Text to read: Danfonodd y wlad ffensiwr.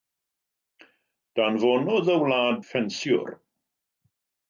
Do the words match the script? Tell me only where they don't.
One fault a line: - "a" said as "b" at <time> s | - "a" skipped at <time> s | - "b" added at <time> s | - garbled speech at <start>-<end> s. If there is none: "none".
none